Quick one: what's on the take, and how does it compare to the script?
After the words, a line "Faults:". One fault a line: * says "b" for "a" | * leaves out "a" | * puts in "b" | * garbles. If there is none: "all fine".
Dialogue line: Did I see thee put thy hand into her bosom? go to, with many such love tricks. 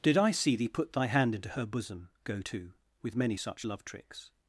Did I see thee put thy hand into her bosom? go to, with many such love tricks.
Faults:
all fine